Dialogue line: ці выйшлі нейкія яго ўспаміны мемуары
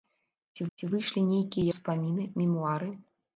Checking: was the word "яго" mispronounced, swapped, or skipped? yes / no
yes